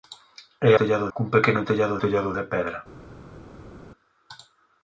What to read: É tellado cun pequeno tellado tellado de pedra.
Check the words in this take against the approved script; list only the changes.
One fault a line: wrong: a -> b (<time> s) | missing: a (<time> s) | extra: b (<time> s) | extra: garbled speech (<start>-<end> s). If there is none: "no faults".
no faults